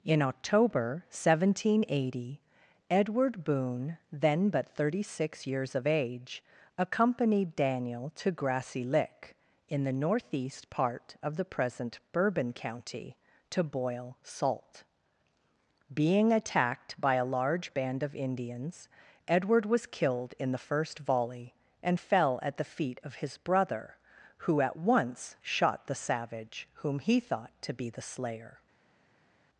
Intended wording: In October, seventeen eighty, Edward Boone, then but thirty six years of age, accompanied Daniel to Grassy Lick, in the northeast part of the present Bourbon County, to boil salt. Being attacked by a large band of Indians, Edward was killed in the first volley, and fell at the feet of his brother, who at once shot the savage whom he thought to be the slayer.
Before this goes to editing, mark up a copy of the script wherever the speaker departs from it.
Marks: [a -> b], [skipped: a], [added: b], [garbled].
In October, seventeen eighty, Edward Boone, then but thirty six years of age, accompanied Daniel to Grassy Lick, in the northeast part of the present Bourbon County, to boil salt. Being attacked by a large band of Indians, Edward was killed in the first volley, and fell at the feet of his brother, who at once shot the savage whom he thought to be the slayer.